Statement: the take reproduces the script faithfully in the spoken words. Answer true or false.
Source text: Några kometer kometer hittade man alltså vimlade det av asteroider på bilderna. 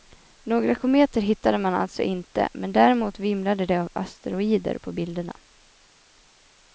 false